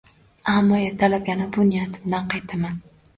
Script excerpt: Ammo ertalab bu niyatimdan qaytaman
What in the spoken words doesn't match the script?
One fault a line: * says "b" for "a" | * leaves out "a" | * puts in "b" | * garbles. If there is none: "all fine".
* puts in "yana"